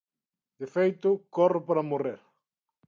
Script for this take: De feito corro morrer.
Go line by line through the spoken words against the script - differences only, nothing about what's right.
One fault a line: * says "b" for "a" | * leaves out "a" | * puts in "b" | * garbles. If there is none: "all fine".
* puts in "para"